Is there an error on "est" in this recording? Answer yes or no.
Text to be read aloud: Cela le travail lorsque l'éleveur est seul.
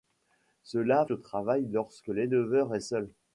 no